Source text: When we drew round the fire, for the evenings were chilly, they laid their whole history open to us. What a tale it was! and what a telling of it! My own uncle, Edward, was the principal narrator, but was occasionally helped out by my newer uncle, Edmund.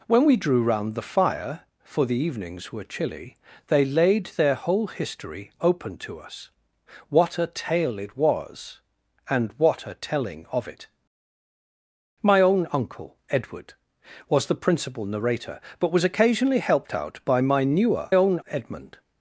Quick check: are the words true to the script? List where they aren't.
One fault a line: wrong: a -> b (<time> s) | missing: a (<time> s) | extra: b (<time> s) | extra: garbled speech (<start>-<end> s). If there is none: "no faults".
wrong: uncle -> own (18.1 s)